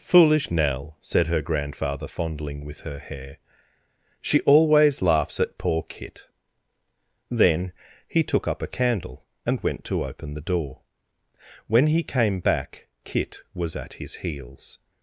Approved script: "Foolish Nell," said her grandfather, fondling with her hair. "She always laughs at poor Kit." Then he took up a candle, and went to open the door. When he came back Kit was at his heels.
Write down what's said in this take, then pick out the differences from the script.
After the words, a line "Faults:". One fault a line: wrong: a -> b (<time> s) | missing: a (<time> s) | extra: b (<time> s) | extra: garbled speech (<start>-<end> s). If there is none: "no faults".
"Foolish Nell," said her grandfather, fondling with her hair. "She always laughs at poor Kit." Then he took up a candle, and went to open the door. When he came back Kit was at his heels.
Faults:
no faults